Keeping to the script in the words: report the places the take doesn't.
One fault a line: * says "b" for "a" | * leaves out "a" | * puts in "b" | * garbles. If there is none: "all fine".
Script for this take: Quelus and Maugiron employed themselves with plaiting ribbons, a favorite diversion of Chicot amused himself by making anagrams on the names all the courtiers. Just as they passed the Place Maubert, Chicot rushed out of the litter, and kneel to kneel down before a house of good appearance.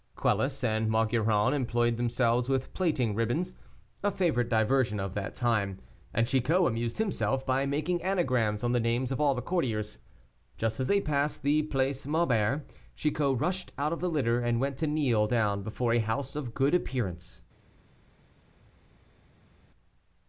* puts in "that time and"
* puts in "of"
* says "went" for "kneel"